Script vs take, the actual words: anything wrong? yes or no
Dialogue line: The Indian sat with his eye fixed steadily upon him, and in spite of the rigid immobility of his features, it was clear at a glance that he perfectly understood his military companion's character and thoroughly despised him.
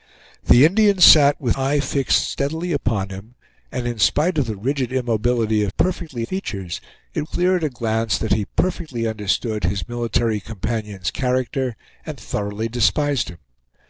yes